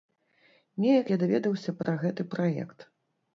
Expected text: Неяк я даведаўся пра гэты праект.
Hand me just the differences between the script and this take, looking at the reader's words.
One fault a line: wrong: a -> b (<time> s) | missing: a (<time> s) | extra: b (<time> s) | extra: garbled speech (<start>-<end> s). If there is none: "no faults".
no faults